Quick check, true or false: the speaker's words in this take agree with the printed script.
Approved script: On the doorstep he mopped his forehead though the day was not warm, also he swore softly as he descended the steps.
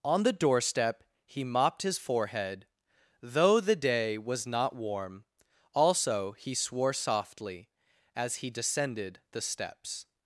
true